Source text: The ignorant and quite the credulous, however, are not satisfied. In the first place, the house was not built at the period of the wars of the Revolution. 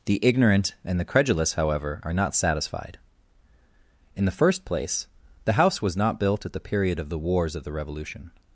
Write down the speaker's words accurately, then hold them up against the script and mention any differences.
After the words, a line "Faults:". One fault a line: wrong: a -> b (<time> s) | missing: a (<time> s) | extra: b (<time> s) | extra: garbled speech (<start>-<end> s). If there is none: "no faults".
The ignorant and the credulous, however, are not satisfied. In the first place, the house was not built at the period of the wars of the Revolution.
Faults:
missing: quite (1.0 s)